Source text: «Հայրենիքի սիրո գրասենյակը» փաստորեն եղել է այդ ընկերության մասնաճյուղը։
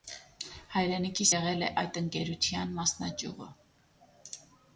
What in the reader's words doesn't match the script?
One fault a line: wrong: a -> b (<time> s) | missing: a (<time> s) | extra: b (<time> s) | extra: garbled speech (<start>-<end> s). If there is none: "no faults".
missing: սիրո գրասենյակը փաստորեն (1.3 s)